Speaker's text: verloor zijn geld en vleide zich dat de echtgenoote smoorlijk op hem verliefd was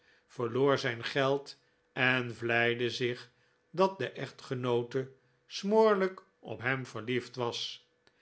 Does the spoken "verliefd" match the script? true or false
true